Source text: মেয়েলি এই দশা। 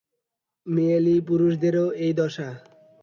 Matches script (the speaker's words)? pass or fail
fail